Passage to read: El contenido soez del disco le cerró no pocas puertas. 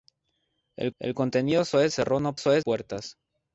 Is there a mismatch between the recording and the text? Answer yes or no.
yes